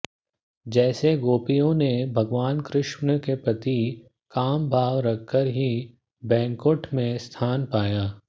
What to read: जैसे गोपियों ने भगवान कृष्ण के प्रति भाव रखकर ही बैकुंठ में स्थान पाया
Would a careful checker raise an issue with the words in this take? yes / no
yes